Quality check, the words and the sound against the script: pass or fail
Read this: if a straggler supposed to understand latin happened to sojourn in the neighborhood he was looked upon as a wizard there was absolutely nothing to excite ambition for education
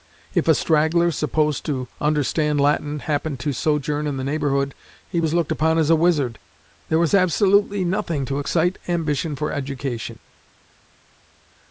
pass